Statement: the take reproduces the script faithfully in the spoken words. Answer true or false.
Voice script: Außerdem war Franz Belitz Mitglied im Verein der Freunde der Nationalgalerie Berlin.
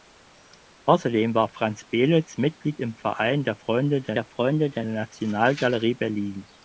false